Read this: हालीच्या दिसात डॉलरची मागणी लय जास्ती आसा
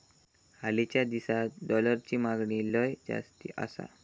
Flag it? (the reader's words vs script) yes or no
no